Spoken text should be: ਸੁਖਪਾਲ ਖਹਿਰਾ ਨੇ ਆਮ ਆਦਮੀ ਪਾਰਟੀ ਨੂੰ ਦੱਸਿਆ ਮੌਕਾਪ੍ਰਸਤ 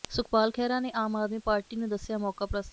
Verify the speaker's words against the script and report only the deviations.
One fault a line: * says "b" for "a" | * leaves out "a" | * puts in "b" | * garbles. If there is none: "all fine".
all fine